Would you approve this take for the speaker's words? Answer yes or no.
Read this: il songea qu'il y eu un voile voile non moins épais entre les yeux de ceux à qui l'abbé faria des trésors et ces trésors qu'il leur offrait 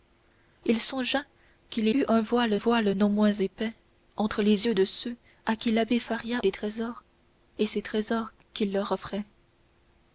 yes